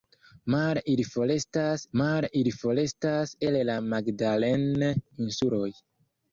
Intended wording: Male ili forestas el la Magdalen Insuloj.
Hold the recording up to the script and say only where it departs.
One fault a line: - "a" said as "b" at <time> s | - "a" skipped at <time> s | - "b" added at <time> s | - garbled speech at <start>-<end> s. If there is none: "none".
- "male ili forestas" added at 2.0 s